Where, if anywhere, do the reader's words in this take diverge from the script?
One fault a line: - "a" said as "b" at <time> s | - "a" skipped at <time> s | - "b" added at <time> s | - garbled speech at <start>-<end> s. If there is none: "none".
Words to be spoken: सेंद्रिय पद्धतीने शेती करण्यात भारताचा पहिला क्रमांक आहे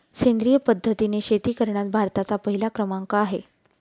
none